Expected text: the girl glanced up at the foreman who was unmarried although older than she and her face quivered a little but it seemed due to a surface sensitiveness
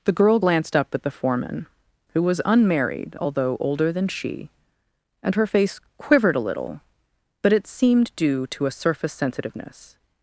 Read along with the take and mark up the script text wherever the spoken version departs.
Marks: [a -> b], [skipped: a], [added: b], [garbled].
the girl glanced up at the foreman who was unmarried although older than she and her face quivered a little but it seemed due to a surface sensitiveness